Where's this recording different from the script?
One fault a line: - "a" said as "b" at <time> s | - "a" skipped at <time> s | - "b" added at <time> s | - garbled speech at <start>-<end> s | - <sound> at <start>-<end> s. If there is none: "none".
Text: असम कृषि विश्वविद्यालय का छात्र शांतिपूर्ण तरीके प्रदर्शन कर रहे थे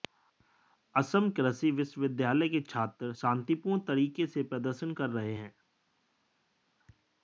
- "का" said as "के" at 2.5 s
- "से" added at 4.3 s
- "थे" said as "हैं" at 5.3 s